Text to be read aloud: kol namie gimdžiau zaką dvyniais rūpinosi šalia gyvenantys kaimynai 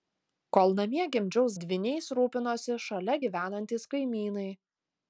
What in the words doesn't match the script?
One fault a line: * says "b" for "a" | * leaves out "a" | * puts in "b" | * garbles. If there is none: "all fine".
* leaves out "zaką"